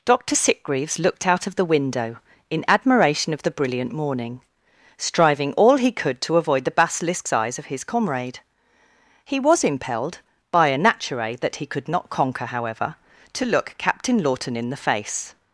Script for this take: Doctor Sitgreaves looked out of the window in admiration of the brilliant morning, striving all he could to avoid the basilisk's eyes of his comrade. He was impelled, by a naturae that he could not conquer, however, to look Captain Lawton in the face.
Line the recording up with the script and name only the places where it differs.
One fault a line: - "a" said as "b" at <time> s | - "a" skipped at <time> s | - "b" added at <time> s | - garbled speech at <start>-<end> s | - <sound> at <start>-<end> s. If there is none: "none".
none